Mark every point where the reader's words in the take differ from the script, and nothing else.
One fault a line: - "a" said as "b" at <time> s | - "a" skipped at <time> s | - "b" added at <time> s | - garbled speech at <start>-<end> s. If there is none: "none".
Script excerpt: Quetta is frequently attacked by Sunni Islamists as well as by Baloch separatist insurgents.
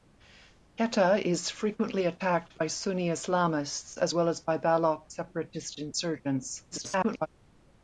- garbled speech at 6.7-7.3 s